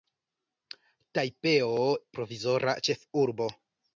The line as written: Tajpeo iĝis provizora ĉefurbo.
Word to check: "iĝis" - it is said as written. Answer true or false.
false